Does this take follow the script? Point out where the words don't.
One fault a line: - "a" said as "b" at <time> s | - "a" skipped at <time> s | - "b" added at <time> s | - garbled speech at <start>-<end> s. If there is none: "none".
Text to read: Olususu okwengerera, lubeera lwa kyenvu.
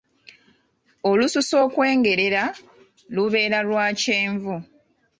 none